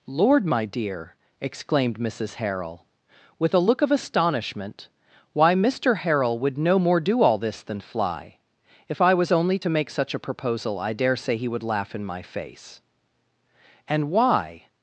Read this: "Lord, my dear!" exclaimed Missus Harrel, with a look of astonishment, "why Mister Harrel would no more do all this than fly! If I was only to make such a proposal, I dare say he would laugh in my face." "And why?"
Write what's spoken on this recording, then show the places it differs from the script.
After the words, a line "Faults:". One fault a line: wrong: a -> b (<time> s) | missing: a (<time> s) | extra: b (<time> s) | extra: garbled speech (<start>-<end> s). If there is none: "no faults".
"Lord, my dear!" exclaimed Missus Harrel, with a look of astonishment, "why Mister Harrel would no more do all this than fly! If I was only to make such a proposal, I dare say he would laugh in my face." "And why?"
Faults:
no faults